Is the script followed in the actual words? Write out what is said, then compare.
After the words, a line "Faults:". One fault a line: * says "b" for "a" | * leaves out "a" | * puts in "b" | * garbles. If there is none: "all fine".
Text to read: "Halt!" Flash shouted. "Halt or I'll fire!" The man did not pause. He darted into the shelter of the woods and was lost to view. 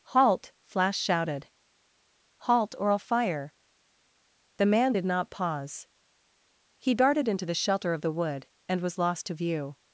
"Halt!" Flash shouted. "Halt or I'll fire!" The man did not pause. He darted into the shelter of the wood and was lost to view.
Faults:
* says "wood" for "woods"